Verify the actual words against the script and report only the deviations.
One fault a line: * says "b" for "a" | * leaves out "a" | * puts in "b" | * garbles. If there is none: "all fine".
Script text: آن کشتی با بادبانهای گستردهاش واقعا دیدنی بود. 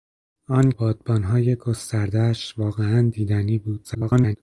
* leaves out "کشتی با"
* garbles